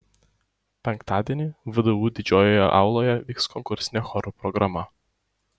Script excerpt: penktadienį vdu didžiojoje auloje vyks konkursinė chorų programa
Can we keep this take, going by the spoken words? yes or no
yes